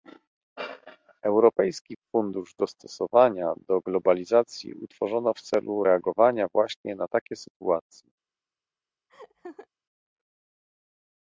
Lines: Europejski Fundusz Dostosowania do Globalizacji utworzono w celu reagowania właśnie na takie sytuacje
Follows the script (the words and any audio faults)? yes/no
no